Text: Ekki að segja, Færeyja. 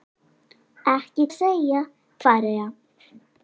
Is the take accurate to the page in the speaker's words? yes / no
yes